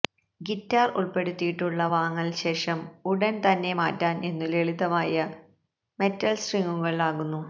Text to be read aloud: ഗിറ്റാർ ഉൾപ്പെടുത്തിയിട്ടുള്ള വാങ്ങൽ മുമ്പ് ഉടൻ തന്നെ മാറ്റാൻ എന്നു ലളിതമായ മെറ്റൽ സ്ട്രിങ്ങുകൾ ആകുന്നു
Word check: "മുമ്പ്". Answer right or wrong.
wrong